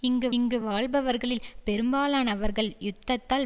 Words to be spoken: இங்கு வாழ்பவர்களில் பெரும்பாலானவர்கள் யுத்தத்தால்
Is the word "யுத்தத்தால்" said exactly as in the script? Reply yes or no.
yes